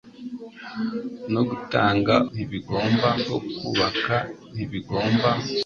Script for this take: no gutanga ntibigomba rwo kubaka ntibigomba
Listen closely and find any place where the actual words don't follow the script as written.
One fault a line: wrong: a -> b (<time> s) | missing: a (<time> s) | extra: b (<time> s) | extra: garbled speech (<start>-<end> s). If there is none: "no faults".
no faults